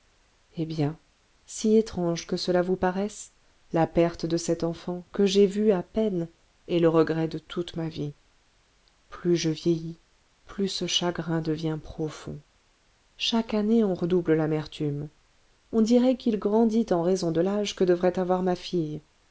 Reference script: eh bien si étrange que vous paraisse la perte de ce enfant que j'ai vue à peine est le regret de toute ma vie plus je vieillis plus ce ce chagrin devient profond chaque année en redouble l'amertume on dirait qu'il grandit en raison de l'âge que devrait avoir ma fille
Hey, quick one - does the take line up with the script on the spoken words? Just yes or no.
no